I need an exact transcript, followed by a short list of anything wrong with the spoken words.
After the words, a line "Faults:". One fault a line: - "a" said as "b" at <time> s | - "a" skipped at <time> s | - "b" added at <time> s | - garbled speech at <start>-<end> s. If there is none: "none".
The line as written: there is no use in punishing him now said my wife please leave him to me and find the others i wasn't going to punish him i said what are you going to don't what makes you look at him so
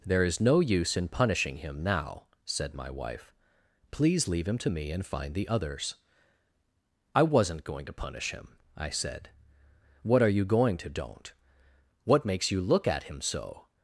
there is no use in punishing him now said my wife please leave him to me and find the others i wasn't going to punish him i said what are you going to don't what makes you look at him so
Faults:
none